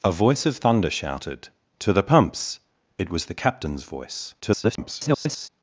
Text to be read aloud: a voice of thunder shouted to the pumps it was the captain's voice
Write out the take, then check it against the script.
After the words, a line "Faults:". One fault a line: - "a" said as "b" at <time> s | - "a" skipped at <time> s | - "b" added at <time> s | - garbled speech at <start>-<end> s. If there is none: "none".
a voice of thunder shouted to the pumps it was the captain's voice [garbled]
Faults:
- garbled speech at 4.4-5.5 s